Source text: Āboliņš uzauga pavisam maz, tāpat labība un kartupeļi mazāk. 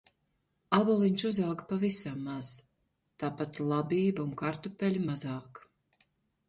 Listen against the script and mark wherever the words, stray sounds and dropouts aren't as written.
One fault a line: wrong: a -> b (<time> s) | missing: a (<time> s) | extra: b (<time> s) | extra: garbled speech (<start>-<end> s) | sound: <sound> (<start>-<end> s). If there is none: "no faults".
no faults